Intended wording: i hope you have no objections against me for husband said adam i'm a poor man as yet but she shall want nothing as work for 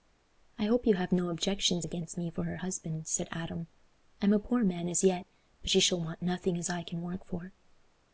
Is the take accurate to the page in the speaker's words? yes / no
no